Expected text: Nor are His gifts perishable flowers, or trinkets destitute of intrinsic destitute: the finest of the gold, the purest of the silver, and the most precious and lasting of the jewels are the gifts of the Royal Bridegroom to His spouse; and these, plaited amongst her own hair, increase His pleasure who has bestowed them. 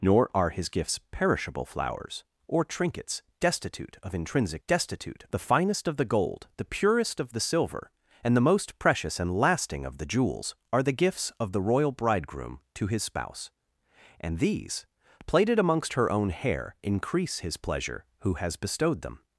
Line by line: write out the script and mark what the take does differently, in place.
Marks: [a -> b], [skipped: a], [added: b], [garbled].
Nor are His gifts perishable flowers, or trinkets destitute of intrinsic destitute: the finest of the gold, the purest of the silver, and the most precious and lasting of the jewels are the gifts of the Royal Bridegroom to His spouse; and these, plaited amongst her own hair, increase His pleasure who has bestowed them.